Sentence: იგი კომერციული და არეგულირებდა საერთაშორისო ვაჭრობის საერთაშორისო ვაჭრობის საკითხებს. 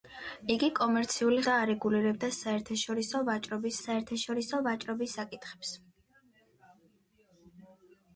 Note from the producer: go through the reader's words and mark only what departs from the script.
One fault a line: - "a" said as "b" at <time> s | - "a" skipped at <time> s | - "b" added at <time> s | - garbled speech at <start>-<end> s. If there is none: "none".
none